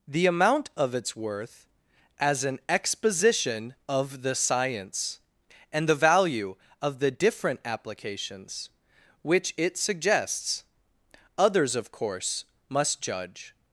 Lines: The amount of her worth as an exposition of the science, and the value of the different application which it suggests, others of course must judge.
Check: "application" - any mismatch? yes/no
yes